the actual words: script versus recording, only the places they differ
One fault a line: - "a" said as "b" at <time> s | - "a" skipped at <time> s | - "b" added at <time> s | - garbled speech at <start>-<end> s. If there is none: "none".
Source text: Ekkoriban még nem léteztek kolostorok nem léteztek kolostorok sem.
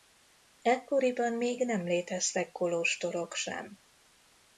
- "nem léteztek kolostorok" skipped at 3.3 s